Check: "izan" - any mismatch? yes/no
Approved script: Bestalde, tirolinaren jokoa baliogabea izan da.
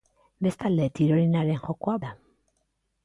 yes